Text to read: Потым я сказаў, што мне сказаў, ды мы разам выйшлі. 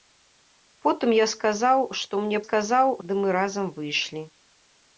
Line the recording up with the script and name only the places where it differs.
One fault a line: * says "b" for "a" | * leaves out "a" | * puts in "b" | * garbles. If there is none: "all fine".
all fine